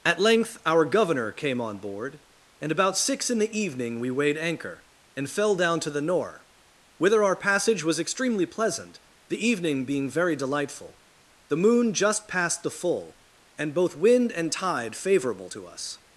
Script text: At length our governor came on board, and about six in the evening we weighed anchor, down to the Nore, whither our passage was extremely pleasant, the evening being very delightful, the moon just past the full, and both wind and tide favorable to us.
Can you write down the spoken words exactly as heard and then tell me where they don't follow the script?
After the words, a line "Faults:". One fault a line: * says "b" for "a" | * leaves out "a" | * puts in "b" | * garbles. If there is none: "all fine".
At length our governor came on board, and about six in the evening we weighed anchor, and fell down to the Nore, whither our passage was extremely pleasant, the evening being very delightful, the moon just past the full, and both wind and tide favorable to us.
Faults:
* puts in "and fell"